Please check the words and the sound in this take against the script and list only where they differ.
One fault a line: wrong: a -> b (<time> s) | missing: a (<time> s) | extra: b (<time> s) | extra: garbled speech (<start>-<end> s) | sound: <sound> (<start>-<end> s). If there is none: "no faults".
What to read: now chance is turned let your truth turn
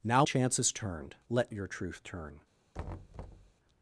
sound: thud (2.7-3.5 s)